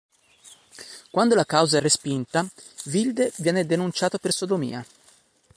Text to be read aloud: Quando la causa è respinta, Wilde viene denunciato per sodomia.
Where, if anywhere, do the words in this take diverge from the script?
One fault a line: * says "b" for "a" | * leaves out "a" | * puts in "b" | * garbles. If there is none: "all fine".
all fine